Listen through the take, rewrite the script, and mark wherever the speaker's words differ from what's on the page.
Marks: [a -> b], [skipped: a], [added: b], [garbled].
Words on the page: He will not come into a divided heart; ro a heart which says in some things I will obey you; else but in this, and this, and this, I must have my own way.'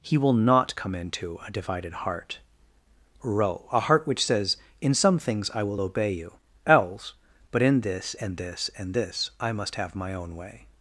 He will not come into a divided heart; ro a heart which says in some things I will obey you; else but in this, and this, and this, I must have my own way.'